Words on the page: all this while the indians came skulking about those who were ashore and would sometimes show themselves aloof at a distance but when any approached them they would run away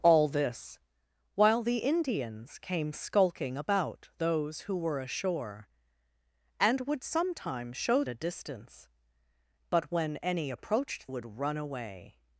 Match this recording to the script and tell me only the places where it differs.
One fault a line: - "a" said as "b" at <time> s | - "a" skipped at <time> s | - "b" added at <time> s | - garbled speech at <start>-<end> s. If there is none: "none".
- "themselves aloof at" skipped at 8.0 s
- "them they" skipped at 11.1 s